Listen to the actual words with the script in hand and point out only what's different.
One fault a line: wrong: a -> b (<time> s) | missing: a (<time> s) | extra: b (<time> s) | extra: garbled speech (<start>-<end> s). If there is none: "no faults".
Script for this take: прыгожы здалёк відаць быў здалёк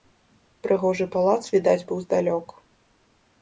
wrong: здалёк -> палац (1.2 s)